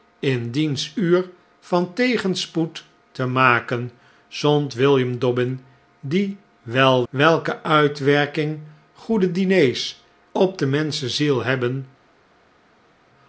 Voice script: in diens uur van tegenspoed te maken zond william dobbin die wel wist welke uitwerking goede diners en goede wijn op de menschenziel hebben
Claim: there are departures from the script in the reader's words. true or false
true